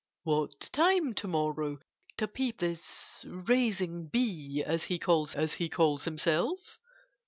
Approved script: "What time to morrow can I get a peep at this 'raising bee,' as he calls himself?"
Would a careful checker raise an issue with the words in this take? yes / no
yes